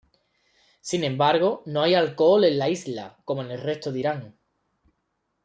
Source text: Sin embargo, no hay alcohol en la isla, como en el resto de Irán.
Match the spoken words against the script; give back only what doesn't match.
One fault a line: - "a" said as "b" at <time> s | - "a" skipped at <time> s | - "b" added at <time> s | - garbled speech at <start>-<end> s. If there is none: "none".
none